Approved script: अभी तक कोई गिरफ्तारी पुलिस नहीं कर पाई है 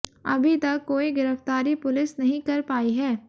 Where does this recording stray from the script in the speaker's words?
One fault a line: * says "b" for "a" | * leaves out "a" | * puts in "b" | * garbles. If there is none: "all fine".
all fine